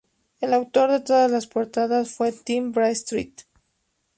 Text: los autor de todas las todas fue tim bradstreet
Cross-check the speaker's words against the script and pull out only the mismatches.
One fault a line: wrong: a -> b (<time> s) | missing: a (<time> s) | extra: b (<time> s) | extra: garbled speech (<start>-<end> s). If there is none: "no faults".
wrong: los -> el (0.4 s)
wrong: todas -> portadas (1.5 s)